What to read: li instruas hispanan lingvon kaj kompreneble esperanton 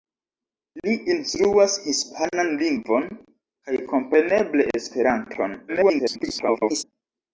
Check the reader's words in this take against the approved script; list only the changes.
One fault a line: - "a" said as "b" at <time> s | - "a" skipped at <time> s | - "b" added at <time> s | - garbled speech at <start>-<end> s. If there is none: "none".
- garbled speech at 5.7-6.8 s